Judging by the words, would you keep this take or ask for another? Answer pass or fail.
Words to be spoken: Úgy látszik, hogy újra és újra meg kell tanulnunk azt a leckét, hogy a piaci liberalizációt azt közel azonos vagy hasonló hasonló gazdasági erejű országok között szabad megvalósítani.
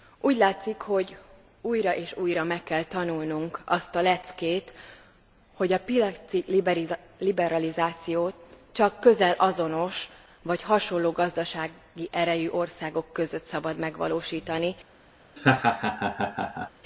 fail